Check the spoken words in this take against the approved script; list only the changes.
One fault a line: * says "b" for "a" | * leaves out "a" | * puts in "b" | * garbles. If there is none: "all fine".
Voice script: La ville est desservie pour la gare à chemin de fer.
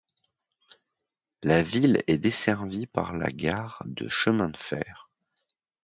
* says "par" for "pour"
* says "de" for "à"